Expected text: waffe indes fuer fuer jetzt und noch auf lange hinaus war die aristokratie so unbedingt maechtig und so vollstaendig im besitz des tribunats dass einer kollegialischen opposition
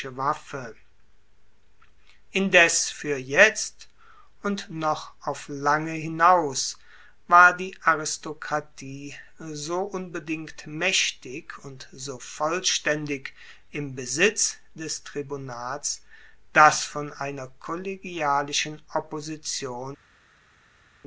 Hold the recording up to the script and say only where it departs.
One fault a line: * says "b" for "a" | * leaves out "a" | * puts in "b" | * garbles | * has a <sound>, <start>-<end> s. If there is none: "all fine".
* leaves out "fuer"
* puts in "von"